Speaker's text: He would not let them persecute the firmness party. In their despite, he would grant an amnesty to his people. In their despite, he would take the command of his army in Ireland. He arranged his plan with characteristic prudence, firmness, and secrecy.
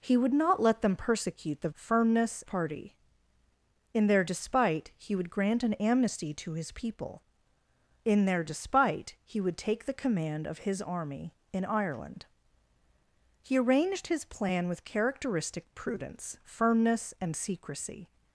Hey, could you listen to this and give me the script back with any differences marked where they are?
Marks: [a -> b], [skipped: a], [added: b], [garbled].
He would not let them persecute the firmness party. In their despite, he would grant an amnesty to his people. In their despite, he would take the command of his army in Ireland. He arranged his plan with characteristic prudence, firmness, and secrecy.